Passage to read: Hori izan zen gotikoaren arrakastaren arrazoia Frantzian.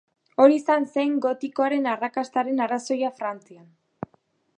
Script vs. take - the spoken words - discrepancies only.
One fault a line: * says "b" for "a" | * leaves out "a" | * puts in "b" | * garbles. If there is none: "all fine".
all fine